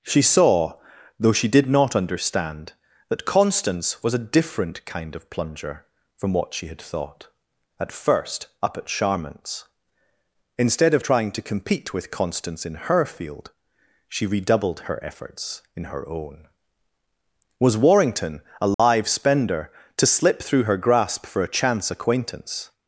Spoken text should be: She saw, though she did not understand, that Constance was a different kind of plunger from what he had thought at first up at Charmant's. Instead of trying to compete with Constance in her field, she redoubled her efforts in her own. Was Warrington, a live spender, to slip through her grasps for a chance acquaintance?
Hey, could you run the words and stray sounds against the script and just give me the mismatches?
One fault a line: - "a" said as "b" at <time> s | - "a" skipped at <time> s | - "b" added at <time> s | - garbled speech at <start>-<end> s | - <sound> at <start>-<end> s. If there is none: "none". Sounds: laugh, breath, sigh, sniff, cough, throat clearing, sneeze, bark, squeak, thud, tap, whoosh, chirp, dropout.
- "he" said as "she" at 6.5 s
- dropout at 18.7-18.8 s
- "grasps" said as "grasp" at 20.8 s